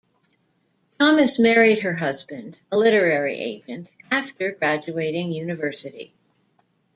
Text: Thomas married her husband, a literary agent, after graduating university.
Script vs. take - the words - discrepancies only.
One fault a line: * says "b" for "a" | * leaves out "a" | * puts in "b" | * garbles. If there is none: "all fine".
all fine